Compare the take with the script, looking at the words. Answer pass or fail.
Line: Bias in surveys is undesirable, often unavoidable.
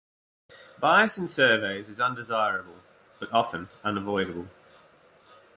fail